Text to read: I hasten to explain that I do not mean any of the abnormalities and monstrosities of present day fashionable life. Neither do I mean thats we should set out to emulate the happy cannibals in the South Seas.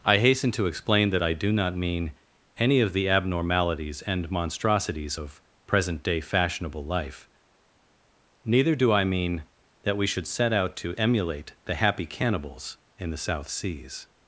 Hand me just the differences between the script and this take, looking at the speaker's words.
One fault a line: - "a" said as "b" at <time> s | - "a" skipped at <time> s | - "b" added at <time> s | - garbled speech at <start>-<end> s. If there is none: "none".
- "thats" said as "that" at 9.8 s